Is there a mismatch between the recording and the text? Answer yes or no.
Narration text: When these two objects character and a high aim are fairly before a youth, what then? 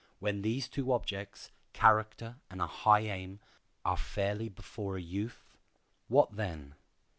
no